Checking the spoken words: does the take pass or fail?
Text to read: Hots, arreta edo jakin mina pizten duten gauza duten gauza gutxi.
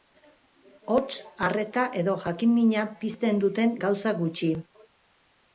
fail